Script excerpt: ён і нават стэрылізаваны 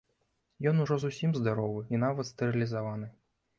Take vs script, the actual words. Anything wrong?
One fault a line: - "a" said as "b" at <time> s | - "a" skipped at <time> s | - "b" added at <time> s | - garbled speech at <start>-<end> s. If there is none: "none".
- "ужо зусім здаровы" added at 0.8 s